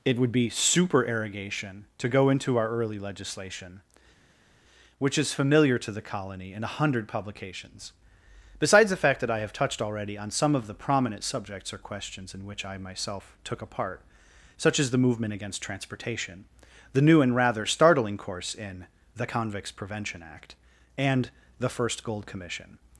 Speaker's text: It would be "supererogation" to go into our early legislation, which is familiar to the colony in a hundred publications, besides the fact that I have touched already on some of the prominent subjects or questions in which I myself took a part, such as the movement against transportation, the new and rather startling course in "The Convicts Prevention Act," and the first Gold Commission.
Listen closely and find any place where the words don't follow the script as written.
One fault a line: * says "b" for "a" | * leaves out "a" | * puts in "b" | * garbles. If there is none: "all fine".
all fine